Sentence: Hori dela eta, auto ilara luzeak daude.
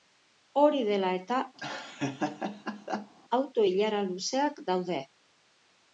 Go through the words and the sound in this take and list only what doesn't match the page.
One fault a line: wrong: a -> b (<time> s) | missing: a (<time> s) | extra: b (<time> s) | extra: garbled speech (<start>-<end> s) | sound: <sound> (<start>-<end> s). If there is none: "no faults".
sound: laugh (1.6-3.1 s)